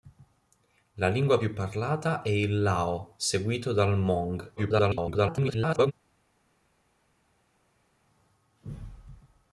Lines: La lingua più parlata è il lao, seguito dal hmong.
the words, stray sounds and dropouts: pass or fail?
fail